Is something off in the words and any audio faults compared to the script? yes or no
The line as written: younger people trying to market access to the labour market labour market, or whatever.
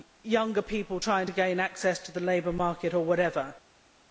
yes